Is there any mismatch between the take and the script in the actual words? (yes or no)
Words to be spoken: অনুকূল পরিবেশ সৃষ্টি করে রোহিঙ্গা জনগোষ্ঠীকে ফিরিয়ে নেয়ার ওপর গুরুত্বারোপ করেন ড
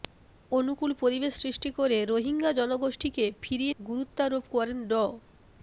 yes